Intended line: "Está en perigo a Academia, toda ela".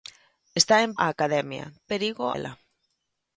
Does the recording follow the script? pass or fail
fail